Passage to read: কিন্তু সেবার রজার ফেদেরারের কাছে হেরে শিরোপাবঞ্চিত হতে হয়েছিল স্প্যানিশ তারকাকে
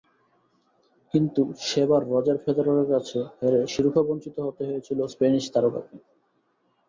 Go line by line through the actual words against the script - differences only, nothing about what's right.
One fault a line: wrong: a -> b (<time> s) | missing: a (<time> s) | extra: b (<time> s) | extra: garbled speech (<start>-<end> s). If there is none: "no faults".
no faults